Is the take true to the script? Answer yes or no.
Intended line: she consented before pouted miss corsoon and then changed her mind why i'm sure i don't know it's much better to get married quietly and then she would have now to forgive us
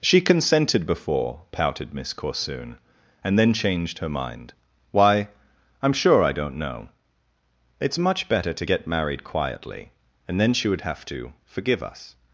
no